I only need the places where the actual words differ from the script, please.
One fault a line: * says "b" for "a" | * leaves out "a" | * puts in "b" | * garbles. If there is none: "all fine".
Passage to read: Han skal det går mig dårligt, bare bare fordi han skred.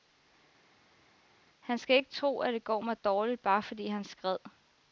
* puts in "ikke tro at"
* leaves out "bare"